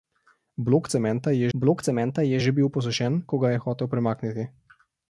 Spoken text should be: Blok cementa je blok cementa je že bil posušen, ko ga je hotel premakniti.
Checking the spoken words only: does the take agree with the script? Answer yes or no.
yes